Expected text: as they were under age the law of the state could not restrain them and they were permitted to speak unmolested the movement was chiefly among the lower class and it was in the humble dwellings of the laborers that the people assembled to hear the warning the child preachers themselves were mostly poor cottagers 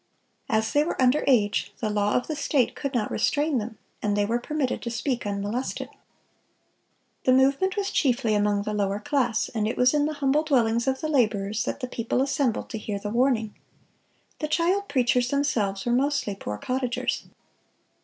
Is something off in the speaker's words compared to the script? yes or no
no